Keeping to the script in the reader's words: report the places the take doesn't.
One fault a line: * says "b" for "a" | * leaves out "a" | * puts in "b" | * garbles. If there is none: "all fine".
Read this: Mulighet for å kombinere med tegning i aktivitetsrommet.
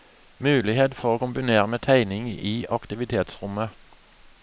all fine